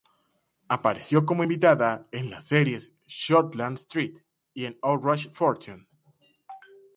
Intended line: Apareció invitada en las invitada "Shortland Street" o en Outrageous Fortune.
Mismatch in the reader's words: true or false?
true